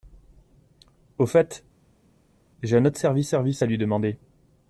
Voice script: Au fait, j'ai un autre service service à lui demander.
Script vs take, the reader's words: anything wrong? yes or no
no